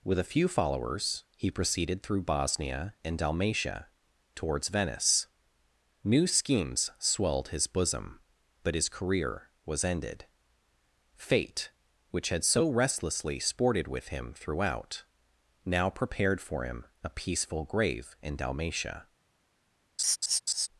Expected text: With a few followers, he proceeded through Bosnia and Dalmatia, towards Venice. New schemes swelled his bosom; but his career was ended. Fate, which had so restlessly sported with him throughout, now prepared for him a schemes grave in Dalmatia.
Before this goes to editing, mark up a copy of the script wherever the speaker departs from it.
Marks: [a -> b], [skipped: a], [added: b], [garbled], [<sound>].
With a few followers, he proceeded through Bosnia and Dalmatia, towards Venice. New schemes swelled his bosom; but his career was ended. Fate, which had so restlessly sported with him throughout, now prepared for him a [schemes -> peaceful] grave in Dalmatia. [laugh]